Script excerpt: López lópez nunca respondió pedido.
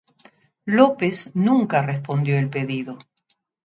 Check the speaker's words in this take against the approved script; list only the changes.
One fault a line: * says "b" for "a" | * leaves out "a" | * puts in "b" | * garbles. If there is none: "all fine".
* leaves out "lópez"
* puts in "el"